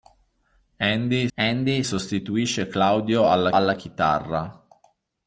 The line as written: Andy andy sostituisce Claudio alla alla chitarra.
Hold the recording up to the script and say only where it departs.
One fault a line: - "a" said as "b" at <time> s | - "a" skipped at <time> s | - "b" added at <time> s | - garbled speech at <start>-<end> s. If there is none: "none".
none